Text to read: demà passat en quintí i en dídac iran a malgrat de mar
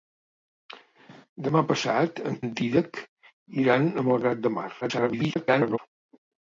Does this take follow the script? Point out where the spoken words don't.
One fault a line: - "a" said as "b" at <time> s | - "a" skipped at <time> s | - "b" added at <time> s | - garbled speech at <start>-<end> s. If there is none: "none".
- "quintí i" skipped at 2.4 s
- garbled speech at 4.8-5.8 s